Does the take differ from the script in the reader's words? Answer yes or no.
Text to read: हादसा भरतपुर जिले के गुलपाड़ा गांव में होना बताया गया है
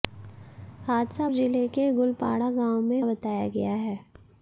yes